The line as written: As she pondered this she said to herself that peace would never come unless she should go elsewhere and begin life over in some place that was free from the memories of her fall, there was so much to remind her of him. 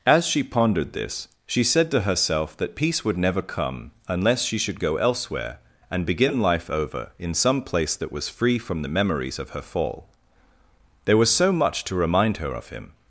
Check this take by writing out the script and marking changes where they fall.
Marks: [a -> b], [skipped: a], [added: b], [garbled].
As she pondered this she said to herself that peace would never come unless she should go elsewhere and begin life over in some place that was free from the memories of her fall, there was so much to remind her of him.